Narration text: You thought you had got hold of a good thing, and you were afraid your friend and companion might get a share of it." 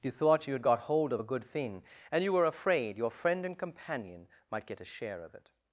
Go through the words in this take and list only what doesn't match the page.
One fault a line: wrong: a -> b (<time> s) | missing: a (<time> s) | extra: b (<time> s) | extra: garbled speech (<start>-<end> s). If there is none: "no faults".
no faults